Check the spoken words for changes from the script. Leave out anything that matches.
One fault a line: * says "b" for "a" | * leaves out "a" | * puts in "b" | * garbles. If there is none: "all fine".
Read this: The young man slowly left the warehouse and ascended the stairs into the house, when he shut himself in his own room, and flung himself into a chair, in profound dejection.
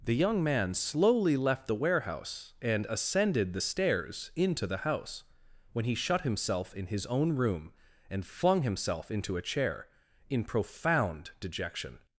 all fine